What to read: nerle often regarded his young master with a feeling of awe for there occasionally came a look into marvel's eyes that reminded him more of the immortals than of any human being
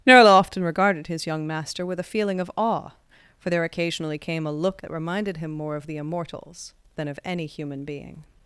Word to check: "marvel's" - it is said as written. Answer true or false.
false